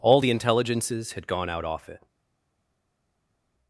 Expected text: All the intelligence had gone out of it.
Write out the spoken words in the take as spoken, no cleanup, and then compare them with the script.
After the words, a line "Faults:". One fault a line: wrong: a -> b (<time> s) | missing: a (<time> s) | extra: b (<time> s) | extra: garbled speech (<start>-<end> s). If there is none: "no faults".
All the intelligences had gone out off it.
Faults:
wrong: intelligence -> intelligences (0.3 s)
wrong: of -> off (1.6 s)